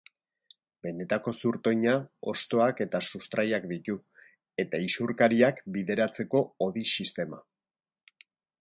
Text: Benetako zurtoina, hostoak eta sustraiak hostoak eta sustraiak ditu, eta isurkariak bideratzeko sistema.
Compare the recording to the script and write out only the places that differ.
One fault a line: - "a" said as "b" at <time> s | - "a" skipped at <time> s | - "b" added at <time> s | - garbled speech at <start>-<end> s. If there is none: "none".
- "hostoak eta sustraiak" skipped at 3.7 s
- "hodi" added at 6.7 s